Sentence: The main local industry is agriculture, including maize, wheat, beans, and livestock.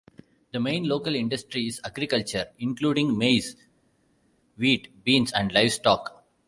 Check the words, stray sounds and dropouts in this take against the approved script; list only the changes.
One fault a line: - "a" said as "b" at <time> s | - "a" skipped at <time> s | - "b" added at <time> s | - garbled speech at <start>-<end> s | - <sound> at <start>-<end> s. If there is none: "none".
none